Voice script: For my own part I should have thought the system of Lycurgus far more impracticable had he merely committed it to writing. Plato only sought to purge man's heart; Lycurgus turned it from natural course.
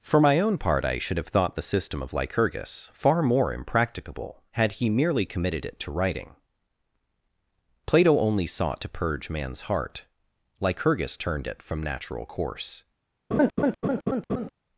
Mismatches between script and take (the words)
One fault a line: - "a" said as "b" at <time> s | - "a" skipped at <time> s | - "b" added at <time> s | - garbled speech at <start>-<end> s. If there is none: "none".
none